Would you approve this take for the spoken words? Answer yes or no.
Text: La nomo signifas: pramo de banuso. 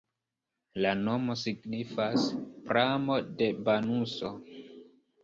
yes